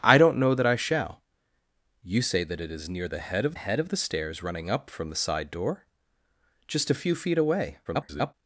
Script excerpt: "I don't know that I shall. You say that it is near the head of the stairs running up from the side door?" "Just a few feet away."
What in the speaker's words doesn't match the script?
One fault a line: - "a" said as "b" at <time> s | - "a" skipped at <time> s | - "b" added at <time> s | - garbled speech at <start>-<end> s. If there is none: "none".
- "head of" added at 3.5 s
- garbled speech at 7.8-8.3 s